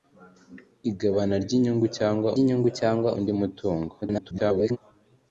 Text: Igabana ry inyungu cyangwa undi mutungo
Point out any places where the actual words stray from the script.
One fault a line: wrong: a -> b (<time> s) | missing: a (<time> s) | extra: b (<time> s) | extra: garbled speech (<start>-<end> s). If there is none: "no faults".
extra: inyungu cyangwa (2.4 s)
extra: garbled speech (4.0-4.8 s)